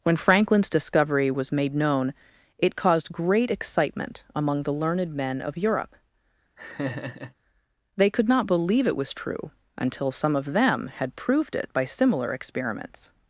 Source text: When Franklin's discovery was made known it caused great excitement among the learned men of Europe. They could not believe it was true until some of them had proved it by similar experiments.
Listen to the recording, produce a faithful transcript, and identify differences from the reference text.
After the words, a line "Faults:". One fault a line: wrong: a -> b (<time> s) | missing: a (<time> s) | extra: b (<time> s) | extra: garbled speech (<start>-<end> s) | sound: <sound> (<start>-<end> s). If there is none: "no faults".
When Franklin's discovery was made known it caused great excitement among the learned men of Europe. They could not believe it was true until some of them had proved it by similar experiments.
Faults:
sound: laugh (6.6-7.3 s)